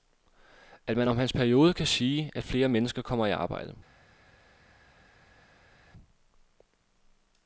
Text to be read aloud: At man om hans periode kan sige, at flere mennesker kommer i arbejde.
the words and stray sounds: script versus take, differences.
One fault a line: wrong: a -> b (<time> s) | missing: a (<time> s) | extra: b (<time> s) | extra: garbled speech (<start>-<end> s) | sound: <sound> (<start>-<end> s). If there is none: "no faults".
no faults